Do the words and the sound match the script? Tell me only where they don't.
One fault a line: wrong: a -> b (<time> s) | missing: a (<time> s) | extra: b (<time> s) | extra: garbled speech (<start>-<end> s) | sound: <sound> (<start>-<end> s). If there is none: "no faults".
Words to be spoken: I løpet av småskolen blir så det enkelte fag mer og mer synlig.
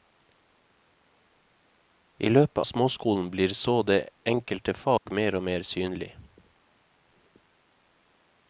missing: av (2.6 s)
sound: dropout (5.0-5.1 s)